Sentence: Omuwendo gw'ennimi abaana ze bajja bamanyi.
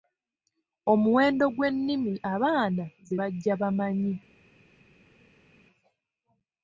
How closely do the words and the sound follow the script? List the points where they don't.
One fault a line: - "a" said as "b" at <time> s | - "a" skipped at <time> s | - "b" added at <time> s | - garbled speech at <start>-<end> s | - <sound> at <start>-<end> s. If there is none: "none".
none